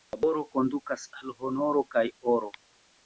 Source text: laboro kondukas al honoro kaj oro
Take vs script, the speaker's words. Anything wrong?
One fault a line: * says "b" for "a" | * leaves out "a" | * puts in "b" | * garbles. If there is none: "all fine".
all fine